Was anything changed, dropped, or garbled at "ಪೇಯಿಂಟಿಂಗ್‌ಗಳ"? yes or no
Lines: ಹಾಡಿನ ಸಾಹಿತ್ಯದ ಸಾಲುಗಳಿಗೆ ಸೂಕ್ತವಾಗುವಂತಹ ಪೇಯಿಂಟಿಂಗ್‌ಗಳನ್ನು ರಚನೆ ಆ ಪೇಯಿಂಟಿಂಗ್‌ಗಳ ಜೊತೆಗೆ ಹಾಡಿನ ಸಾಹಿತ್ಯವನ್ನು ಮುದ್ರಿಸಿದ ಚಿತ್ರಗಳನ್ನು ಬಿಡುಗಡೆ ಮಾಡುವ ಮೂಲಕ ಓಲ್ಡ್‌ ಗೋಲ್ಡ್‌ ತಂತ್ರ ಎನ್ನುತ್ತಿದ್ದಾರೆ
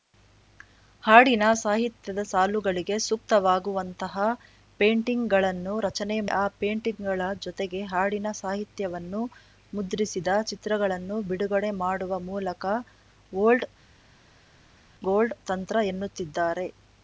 no